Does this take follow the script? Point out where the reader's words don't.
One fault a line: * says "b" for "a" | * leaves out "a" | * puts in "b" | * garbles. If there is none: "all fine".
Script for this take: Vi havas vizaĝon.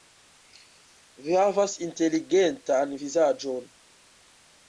* puts in "inteligentan"